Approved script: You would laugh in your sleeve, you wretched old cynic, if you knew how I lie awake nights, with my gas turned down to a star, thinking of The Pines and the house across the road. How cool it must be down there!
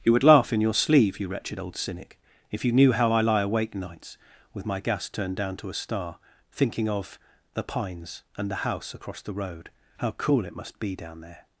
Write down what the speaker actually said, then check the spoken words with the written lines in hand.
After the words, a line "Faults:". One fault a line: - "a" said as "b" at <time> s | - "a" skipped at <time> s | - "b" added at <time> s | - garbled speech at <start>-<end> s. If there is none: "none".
You would laugh in your sleeve, you wretched old cynic, if you knew how I lie awake nights, with my gas turned down to a star, thinking of The Pines and the house across the road. How cool it must be down there!
Faults:
none